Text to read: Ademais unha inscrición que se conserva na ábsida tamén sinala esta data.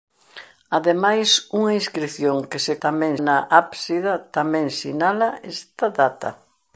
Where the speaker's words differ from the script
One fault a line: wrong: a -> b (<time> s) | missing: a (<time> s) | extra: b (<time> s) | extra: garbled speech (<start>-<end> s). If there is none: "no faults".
wrong: conserva -> tamén (2.8 s)